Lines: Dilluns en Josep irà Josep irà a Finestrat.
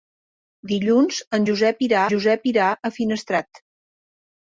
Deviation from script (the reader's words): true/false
false